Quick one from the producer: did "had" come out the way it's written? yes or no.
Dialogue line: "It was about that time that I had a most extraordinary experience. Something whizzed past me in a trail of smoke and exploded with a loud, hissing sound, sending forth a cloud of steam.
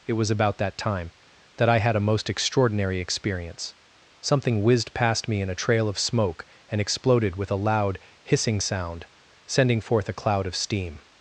yes